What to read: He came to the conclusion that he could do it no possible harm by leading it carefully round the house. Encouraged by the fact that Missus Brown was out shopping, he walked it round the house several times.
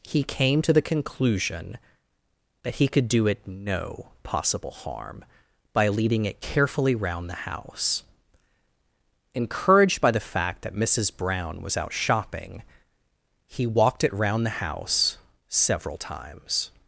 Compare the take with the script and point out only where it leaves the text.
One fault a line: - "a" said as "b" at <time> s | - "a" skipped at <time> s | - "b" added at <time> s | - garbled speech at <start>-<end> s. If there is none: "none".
none